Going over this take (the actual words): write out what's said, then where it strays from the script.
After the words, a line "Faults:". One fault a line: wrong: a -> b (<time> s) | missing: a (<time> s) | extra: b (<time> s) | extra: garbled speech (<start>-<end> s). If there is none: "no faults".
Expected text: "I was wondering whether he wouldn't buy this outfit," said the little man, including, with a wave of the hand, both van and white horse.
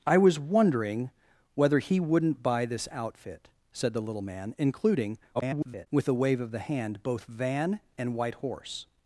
"I was wondering whether he wouldn't buy this outfit," said the little man, including, [garbled] with a wave of the hand, both van and white horse.
Faults:
extra: garbled speech (5.3-5.9 s)